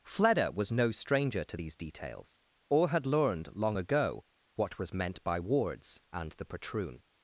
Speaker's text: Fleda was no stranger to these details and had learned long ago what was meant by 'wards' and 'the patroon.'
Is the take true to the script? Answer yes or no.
no